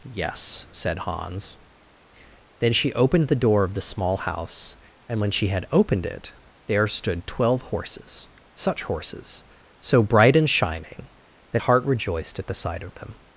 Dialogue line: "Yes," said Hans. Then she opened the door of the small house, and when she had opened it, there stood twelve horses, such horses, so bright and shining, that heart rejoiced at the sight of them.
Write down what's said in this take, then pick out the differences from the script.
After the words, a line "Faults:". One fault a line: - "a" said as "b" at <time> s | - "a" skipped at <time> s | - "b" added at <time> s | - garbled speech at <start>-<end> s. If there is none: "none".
"Yes," said Hans. Then she opened the door of the small house, and when she had opened it, there stood twelve horses, such horses, so bright and shining, that heart rejoiced at the sight of them.
Faults:
none